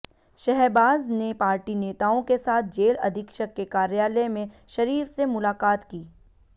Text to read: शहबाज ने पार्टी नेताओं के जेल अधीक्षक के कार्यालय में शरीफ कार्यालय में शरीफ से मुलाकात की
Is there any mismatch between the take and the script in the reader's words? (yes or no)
yes